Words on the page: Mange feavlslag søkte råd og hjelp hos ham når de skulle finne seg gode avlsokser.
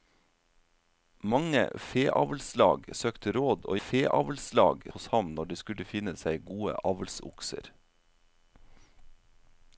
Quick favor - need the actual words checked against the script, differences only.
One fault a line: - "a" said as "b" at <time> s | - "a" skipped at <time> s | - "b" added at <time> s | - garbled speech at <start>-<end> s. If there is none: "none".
- "hjelp" said as "feavlslag" at 3.9 s